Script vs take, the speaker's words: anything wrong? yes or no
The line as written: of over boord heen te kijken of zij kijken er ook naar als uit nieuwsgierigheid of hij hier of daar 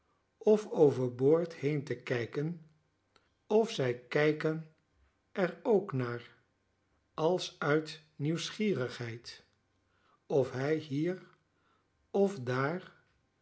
no